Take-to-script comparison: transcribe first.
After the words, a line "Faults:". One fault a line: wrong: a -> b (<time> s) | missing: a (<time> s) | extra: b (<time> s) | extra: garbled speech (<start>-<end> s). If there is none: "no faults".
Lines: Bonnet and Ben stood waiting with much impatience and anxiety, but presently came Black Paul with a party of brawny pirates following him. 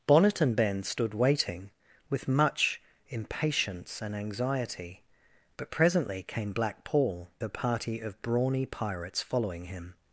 Bonnet and Ben stood waiting with much impatience and anxiety, but presently came Black Paul a party of brawny pirates following him.
Faults:
missing: with (7.3 s)